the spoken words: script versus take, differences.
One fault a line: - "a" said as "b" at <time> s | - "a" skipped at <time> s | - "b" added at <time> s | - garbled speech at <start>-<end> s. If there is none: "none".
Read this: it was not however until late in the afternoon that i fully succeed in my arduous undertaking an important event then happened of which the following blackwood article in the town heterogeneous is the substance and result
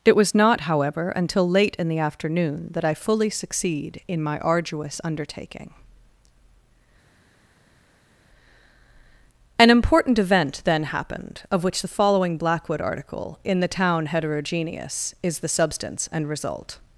none